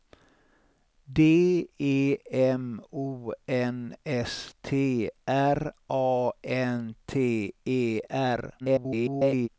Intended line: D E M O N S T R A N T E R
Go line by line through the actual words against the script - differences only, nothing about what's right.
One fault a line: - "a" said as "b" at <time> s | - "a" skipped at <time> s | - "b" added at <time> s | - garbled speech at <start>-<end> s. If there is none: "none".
- garbled speech at 8.6-9.5 s